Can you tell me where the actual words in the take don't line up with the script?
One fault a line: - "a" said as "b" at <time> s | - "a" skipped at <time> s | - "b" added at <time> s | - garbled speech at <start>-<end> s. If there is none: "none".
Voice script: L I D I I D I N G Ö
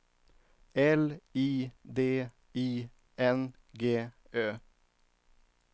- "I D I" skipped at 2.9 s